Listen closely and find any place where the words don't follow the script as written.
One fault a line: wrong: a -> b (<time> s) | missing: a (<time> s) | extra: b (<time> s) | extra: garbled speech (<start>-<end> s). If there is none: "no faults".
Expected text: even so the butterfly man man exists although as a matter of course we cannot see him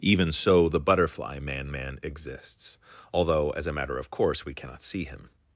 no faults